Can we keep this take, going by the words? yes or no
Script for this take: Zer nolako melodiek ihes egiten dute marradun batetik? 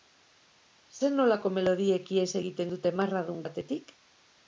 yes